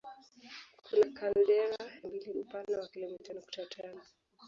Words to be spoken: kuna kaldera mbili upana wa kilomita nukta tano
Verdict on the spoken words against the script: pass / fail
pass